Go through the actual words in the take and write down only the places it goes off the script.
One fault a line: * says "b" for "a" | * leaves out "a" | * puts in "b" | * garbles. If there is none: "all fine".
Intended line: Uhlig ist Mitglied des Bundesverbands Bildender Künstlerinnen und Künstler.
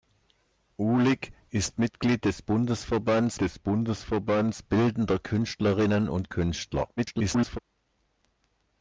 * puts in "des Bundesverbands"
* garbles